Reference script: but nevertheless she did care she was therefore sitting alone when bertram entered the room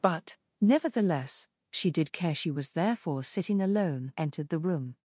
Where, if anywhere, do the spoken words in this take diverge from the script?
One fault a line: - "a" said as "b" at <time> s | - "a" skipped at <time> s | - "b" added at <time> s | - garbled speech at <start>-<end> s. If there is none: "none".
- "when bertram" skipped at 4.1 s